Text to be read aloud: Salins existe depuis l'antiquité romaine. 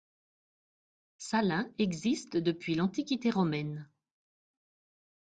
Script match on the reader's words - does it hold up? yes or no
yes